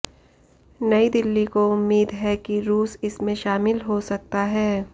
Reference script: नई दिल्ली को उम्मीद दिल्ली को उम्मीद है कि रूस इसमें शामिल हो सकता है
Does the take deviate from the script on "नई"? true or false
false